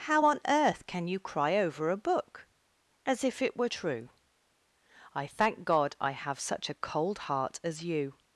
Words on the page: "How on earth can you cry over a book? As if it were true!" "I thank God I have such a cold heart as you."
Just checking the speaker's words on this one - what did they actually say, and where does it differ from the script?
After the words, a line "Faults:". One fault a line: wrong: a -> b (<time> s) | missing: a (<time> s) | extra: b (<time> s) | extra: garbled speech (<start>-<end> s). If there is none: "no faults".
"How on earth can you cry over a book? As if it were true!" "I thank God I have such a cold heart as you."
Faults:
no faults